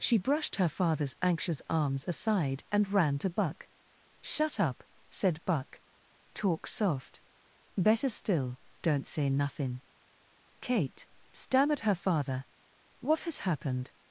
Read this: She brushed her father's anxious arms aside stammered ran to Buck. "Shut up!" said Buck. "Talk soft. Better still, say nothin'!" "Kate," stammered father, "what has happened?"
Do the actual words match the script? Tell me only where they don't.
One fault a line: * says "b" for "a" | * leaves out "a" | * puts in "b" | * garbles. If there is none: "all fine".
* says "and" for "stammered"
* puts in "don't"
* puts in "her"